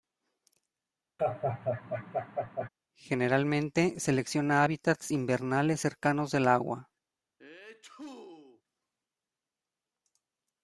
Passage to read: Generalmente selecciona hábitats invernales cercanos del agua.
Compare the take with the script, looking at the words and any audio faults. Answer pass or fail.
fail